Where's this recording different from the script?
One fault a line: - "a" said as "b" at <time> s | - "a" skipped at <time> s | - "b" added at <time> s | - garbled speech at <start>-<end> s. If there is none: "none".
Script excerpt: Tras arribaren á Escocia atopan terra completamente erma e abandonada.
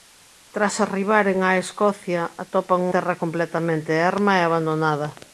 none